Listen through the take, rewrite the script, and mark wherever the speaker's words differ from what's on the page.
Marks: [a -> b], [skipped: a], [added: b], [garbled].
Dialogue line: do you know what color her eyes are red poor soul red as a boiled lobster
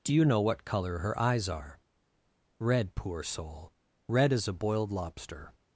do you know what color her eyes are red poor soul red as a boiled lobster